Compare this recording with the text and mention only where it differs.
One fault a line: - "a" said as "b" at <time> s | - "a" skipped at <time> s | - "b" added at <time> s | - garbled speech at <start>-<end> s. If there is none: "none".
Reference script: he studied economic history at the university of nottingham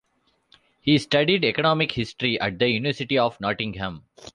none